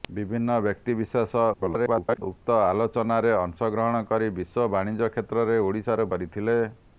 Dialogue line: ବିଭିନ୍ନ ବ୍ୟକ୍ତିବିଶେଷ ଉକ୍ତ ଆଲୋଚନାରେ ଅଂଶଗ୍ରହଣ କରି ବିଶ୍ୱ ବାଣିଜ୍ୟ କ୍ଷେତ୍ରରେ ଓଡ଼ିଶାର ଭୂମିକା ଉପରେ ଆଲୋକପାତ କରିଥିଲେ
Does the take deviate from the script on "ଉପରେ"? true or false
true